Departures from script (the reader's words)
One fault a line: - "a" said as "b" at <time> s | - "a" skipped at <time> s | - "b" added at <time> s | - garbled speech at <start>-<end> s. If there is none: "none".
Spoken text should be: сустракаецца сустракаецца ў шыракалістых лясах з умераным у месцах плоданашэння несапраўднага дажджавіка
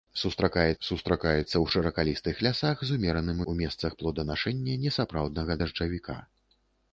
none